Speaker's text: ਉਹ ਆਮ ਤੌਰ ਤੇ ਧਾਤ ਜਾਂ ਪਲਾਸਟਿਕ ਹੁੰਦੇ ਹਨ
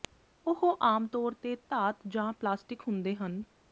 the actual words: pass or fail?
pass